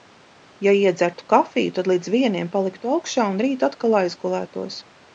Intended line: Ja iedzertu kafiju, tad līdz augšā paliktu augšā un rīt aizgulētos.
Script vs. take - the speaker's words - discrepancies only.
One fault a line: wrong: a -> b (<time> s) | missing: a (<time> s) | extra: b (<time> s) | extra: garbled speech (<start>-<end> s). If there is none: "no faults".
wrong: augšā -> vieniem (2.1 s)
extra: atkal (3.7 s)